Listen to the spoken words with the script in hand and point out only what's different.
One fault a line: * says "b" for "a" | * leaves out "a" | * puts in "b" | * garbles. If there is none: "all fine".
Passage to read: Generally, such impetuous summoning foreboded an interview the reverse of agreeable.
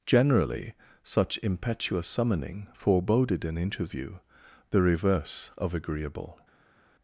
all fine